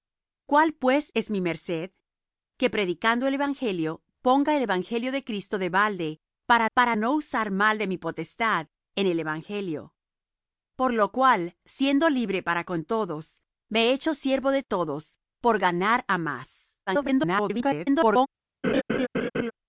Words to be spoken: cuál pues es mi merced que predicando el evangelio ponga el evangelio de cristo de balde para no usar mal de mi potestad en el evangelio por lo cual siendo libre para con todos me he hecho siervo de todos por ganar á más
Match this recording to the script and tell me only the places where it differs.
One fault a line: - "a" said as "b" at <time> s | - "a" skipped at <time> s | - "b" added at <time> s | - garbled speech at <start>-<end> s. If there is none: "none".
- "para" added at 6.7 s
- garbled speech at 16.9-18.3 s